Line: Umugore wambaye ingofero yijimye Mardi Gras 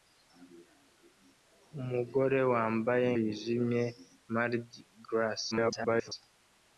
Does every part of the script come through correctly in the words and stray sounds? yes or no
no